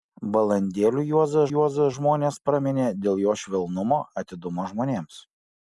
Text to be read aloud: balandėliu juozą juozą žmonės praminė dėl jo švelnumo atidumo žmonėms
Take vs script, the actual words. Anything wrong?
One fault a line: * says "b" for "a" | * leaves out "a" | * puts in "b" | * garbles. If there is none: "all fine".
all fine